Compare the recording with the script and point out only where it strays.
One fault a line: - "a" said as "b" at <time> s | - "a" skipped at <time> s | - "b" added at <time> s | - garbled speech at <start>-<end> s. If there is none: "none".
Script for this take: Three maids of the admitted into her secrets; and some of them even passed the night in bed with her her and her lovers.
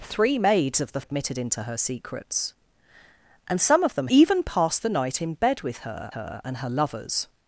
none